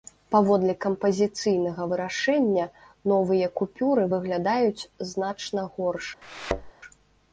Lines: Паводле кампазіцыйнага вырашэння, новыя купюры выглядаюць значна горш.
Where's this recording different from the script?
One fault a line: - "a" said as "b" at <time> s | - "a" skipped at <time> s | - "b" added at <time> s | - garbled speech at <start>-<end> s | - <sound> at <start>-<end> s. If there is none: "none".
- thud at 6.2-6.7 s